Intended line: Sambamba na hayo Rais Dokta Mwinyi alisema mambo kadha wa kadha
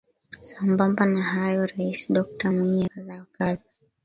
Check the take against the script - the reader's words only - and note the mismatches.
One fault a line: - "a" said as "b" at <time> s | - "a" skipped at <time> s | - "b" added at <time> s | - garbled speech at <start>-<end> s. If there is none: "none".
- "alisema mambo" skipped at 2.8 s